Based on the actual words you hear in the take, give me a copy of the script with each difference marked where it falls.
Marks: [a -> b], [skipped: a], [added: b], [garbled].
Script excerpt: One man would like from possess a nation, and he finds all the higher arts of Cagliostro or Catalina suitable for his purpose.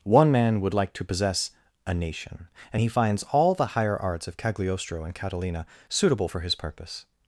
One man would like [from -> to] possess a nation, and he finds all the higher arts of Cagliostro [or -> and] Catalina suitable for his purpose.